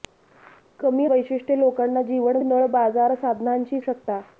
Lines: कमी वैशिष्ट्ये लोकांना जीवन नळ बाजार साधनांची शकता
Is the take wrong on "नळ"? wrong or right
right